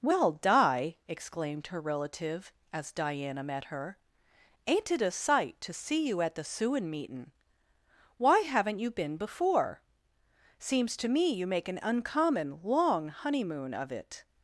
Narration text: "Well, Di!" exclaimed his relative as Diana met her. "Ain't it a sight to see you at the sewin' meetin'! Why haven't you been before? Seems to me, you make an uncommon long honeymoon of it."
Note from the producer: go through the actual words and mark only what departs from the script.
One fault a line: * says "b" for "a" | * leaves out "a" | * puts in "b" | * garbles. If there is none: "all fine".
* says "her" for "his"